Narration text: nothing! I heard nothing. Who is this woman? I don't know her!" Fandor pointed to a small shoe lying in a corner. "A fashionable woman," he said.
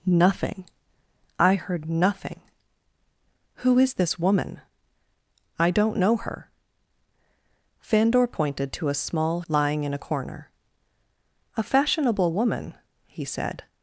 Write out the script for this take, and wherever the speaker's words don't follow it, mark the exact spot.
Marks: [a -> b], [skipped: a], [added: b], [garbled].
nothing! I heard nothing. Who is this woman? I don't know her!" Fandor pointed to a small [skipped: shoe] lying in a corner. "A fashionable woman," he said.